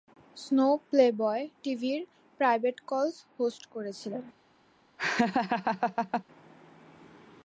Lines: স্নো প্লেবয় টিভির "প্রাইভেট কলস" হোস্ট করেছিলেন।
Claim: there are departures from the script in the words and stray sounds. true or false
true